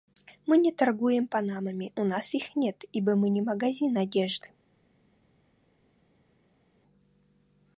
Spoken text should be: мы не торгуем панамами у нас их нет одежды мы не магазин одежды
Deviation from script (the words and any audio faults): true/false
true